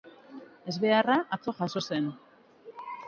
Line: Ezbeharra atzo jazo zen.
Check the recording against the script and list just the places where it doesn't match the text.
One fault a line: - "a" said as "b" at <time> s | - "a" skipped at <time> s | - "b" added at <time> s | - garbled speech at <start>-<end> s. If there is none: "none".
none